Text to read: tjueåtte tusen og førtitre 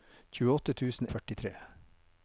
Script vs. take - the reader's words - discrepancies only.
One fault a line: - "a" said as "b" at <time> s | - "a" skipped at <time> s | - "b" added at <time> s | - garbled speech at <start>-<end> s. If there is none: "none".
none